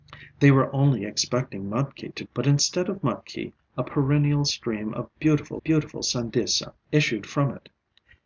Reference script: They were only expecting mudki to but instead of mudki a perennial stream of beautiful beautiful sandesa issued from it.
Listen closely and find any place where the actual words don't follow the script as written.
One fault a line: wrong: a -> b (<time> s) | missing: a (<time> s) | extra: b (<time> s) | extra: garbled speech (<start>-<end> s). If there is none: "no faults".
no faults